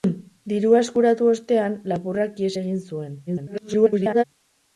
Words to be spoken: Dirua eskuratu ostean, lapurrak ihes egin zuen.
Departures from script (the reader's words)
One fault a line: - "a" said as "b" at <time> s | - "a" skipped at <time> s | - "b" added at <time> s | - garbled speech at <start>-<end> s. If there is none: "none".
- garbled speech at 3.3-4.2 s